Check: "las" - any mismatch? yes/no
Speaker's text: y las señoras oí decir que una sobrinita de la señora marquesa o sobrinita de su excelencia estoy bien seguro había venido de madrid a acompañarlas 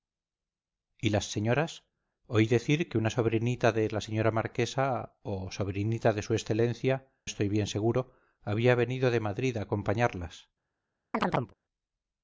no